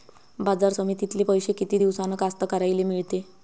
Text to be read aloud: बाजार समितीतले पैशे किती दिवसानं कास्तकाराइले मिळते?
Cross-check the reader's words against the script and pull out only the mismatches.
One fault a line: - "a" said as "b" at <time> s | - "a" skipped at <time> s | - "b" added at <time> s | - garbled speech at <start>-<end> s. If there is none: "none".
none